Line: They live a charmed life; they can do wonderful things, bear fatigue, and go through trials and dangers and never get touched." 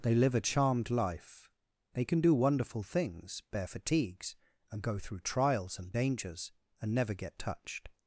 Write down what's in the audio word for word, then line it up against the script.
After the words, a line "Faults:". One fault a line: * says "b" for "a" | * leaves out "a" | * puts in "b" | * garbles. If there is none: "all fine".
They live a charmed life; they can do wonderful things, bear fatigues, and go through trials and dangers and never get touched."
Faults:
* says "fatigues" for "fatigue"